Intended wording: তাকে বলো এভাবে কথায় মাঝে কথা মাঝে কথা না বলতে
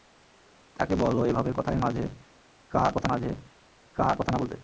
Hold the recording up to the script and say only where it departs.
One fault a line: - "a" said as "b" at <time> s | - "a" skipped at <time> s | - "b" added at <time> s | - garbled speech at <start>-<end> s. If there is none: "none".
none